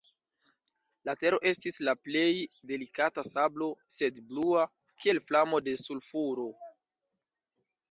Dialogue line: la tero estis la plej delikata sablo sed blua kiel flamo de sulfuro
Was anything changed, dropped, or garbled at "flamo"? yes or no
no